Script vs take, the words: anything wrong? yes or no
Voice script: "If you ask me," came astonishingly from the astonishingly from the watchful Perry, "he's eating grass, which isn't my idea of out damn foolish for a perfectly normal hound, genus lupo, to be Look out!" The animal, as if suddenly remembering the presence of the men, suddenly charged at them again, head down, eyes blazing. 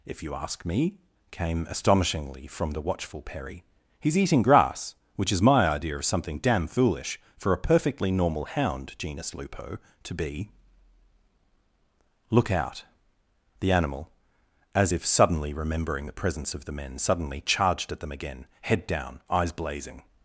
yes